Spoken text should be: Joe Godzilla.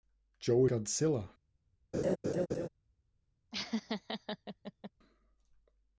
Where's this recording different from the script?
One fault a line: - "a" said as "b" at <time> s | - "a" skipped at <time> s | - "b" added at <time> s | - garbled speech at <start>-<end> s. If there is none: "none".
none